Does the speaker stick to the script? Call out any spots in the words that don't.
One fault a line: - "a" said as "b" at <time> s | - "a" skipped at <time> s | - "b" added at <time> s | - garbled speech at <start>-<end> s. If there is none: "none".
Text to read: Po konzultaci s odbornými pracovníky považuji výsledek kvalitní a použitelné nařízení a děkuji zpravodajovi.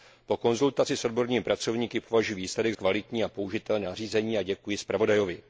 none